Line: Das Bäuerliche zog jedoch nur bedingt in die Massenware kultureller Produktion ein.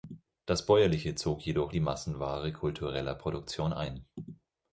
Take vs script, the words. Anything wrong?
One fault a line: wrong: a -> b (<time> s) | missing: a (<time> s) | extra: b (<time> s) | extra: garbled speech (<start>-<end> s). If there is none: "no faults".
missing: nur bedingt in (1.8 s)